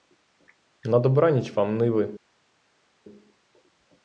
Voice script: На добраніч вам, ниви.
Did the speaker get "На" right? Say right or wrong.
right